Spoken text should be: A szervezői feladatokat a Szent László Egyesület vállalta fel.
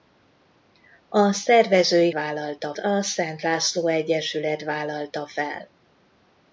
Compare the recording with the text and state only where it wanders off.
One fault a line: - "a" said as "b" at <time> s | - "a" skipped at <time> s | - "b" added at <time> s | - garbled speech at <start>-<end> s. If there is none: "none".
- "feladatokat" said as "vállalta" at 2.1 s